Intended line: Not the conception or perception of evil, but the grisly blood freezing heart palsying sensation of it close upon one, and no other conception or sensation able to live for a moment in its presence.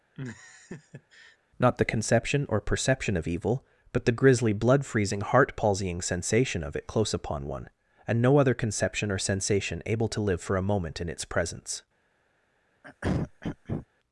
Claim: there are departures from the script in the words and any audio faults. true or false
true